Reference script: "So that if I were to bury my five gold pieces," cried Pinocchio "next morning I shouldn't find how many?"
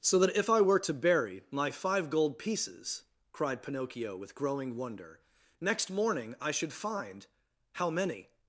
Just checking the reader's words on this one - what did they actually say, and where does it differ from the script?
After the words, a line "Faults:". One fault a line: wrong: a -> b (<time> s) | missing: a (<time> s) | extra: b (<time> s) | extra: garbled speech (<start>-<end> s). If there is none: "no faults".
"So that if I were to bury my five gold pieces," cried Pinocchio with growing wonder, "next morning I should find how many?"
Faults:
extra: with growing wonder (4.2 s)
wrong: shouldn't -> should (6.5 s)